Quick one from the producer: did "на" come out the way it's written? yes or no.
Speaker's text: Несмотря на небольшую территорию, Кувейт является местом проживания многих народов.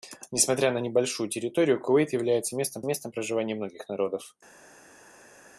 yes